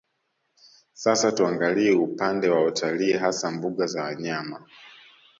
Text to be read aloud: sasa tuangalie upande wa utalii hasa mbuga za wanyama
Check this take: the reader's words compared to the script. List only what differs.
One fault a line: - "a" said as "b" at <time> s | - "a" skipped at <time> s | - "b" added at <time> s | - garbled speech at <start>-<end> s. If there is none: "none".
none